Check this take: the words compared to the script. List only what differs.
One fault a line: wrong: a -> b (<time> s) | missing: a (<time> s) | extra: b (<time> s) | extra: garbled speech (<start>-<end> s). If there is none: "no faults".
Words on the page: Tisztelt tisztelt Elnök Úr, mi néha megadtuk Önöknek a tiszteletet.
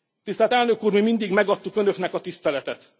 missing: tisztelt (0.5 s)
wrong: néha -> mindig (1.0 s)